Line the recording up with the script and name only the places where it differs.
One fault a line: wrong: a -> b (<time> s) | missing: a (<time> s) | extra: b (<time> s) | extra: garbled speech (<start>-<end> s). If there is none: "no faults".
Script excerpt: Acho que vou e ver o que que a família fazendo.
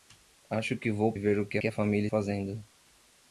no faults